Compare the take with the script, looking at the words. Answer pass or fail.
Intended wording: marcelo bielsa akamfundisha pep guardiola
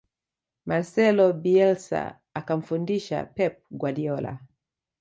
pass